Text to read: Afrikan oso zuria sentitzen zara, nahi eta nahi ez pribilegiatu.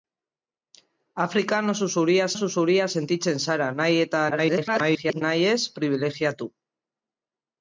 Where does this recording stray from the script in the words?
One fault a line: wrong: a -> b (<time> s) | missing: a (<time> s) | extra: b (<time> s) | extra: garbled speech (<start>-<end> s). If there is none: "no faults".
extra: oso zuria (2.3 s)
extra: garbled speech (4.3-5.2 s)